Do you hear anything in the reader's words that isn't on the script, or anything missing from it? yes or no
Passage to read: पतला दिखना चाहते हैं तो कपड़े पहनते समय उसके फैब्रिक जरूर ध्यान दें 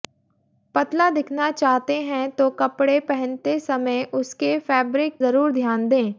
no